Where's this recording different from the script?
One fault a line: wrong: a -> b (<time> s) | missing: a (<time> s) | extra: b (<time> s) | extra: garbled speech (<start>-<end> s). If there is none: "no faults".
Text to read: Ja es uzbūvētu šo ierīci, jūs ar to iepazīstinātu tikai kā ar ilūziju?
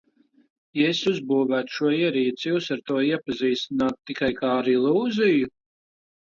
no faults